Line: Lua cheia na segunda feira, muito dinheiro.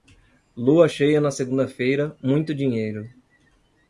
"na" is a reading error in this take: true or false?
false